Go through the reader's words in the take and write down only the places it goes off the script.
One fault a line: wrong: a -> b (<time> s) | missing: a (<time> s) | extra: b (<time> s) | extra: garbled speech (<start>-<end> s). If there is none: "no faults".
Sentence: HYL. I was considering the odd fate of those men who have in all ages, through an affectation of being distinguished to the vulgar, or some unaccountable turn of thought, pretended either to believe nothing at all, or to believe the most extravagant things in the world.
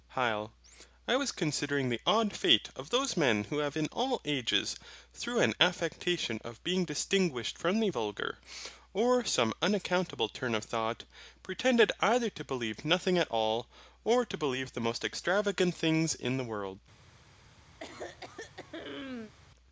wrong: to -> from (7.6 s)